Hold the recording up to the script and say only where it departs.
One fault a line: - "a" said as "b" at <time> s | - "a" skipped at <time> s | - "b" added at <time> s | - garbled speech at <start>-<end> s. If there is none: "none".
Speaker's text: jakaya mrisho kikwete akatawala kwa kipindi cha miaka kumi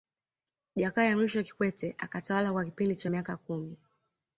none